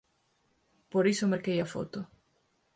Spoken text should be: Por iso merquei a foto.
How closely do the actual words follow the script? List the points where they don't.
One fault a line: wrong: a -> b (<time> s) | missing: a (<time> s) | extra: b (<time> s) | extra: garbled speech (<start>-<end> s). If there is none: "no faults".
no faults